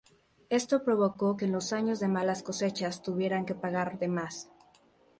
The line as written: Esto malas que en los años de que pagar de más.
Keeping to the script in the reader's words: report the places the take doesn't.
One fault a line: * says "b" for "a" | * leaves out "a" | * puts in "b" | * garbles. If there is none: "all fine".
* says "provocó" for "malas"
* puts in "malas cosechas tuvieran"